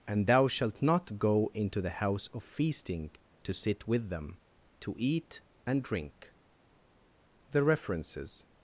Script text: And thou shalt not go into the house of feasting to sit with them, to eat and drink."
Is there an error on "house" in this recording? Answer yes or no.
no